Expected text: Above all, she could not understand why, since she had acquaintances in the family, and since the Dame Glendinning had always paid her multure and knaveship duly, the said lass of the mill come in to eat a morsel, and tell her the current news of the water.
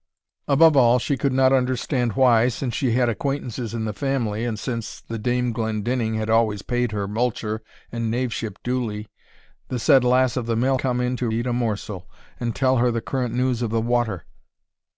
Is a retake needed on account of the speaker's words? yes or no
no